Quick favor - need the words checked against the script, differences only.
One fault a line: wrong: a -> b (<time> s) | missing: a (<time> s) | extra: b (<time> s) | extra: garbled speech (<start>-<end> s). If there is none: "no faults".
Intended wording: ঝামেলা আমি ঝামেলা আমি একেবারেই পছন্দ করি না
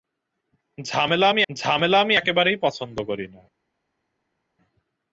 no faults